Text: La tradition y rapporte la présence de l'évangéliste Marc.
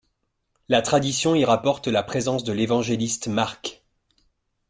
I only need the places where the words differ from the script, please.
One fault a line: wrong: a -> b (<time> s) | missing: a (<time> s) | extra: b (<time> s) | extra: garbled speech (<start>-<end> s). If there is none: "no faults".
no faults